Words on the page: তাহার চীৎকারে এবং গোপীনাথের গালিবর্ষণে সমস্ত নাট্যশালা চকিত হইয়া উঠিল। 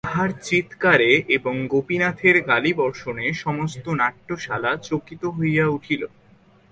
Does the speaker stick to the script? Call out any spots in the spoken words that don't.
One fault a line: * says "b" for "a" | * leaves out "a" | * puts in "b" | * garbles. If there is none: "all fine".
all fine